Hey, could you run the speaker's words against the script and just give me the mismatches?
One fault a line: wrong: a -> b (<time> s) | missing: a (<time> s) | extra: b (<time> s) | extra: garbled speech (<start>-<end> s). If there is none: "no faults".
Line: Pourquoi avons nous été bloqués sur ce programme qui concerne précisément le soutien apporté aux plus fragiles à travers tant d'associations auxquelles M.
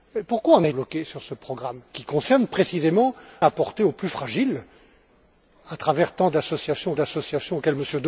missing: été (0.7 s)
missing: le soutien (3.1 s)
extra: d'associations (6.9 s)